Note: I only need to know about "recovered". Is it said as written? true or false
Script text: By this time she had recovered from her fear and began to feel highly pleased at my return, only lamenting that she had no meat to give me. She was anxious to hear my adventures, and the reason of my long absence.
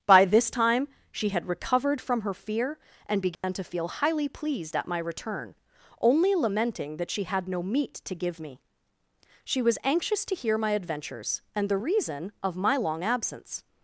true